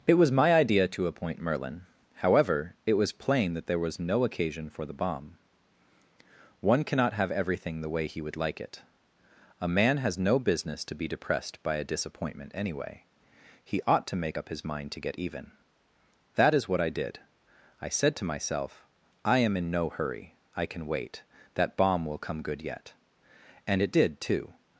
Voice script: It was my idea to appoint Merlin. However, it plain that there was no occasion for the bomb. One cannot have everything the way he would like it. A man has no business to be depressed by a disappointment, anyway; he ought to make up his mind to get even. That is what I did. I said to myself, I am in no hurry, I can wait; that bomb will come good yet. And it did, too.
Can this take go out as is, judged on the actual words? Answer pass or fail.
fail